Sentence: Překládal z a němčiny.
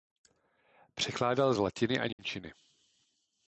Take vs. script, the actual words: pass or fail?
fail